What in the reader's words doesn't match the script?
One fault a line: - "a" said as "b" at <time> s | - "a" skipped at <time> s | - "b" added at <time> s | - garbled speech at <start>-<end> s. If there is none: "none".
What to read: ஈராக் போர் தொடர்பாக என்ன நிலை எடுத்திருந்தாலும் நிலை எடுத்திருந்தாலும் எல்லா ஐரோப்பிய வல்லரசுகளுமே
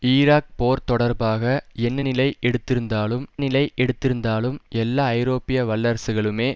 none